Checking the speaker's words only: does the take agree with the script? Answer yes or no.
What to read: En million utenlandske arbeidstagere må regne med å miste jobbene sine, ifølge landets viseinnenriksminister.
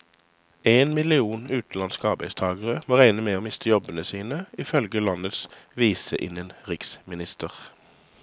yes